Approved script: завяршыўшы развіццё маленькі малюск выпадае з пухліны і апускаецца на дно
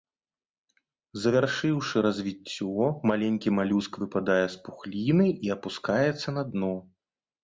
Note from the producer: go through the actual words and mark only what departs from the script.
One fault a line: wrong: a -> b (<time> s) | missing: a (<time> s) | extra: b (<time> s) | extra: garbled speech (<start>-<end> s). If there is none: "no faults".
no faults